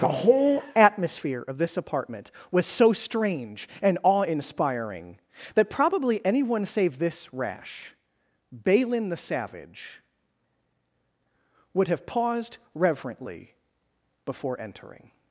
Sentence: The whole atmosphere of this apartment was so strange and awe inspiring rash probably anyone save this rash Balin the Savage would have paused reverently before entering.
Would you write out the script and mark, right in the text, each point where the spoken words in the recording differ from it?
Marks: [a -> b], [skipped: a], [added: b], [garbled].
The whole atmosphere of this apartment was so strange and awe inspiring [rash -> that] probably anyone save this rash Balin the Savage would have paused reverently before entering.